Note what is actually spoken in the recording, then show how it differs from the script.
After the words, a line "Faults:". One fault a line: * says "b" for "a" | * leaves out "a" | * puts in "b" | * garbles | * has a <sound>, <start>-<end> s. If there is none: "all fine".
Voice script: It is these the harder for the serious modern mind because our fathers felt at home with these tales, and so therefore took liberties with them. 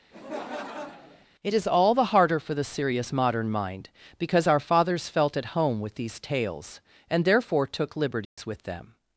It is all the harder for the serious modern mind because our fathers felt at home with these tales, and therefore took liberties with them.
Faults:
* has a laugh, 0.1-1.3 s
* says "all" for "these"
* leaves out "so"
* has a dropout, 8.2-8.4 s